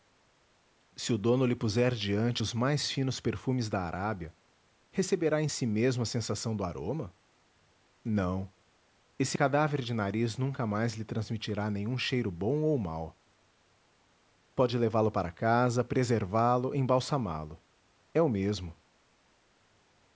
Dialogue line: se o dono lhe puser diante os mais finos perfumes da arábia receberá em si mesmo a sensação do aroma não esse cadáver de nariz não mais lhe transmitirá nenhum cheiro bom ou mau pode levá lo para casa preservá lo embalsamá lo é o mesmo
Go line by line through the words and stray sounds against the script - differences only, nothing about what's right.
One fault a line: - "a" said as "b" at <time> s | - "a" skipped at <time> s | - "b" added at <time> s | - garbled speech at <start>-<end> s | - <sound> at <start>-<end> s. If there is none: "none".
- "não" said as "nunca" at 10.4 s